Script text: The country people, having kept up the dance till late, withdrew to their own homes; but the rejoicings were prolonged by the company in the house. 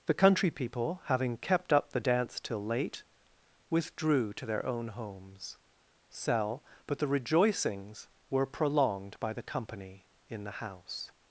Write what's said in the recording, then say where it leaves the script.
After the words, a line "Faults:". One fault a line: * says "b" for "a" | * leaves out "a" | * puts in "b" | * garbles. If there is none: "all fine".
The country people, having kept up the dance till late, withdrew to their own homes; sell but the rejoicings were prolonged by the company in the house.
Faults:
* puts in "sell"